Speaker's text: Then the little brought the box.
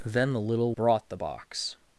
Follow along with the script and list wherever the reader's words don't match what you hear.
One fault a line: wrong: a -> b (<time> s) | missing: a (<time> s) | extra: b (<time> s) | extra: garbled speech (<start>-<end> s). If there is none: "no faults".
no faults